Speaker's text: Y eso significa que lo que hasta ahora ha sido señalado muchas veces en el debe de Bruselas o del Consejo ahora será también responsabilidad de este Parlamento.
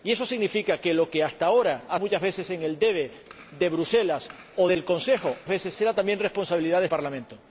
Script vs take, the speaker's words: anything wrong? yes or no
yes